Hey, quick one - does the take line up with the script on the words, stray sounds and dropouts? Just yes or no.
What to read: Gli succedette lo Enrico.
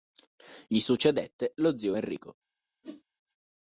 no